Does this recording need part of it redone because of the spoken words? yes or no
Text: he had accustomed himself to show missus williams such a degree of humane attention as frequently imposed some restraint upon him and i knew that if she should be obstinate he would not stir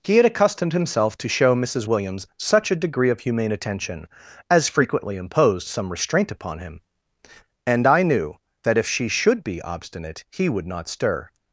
no